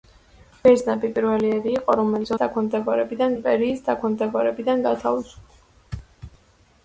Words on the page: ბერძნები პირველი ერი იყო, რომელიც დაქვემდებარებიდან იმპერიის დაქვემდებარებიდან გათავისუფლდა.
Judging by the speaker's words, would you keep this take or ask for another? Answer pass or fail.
pass